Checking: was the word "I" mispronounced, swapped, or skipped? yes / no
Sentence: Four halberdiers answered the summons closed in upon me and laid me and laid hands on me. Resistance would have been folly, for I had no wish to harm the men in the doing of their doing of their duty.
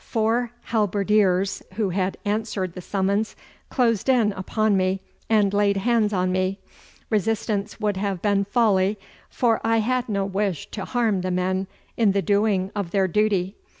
no